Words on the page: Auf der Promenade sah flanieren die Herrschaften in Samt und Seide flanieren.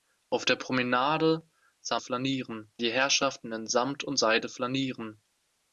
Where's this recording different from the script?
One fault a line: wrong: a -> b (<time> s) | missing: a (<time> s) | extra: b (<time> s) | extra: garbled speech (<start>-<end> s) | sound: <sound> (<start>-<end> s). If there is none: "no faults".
no faults